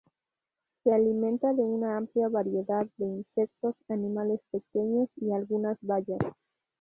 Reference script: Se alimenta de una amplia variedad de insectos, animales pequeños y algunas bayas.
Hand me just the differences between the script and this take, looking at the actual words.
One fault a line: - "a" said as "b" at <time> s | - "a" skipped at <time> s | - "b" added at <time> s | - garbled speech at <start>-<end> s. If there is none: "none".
none